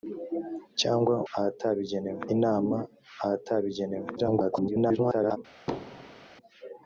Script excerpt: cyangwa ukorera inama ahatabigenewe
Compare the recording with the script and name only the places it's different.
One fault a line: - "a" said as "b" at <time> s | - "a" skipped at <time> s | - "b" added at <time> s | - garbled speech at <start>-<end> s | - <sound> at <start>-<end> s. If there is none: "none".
- "ukorera" said as "ahatabigenewe" at 1.3 s
- garbled speech at 4.2-5.4 s
- thud at 5.7-6.3 s